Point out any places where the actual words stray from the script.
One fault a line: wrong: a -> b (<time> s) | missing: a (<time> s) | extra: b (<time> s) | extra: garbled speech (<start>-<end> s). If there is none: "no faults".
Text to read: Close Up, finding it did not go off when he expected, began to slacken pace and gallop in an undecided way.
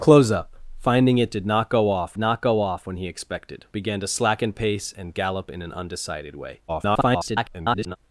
extra: not go off (2.2 s)
extra: garbled speech (6.7-8.0 s)